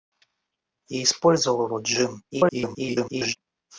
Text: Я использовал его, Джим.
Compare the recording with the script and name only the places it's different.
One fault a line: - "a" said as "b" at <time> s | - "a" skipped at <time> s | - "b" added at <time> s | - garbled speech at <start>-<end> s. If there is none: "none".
- garbled speech at 2.3-3.4 s